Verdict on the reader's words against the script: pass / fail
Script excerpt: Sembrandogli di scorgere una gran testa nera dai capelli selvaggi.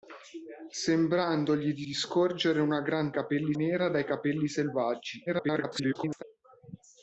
fail